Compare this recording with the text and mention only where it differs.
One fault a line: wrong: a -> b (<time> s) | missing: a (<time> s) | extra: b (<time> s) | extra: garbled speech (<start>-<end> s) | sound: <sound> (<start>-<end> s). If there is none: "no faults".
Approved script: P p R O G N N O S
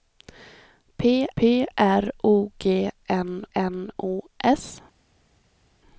no faults